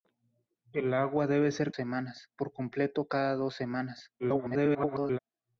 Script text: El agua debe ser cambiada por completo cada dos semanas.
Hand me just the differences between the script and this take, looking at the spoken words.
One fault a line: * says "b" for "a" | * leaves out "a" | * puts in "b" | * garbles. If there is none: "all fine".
* says "semanas" for "cambiada"
* garbles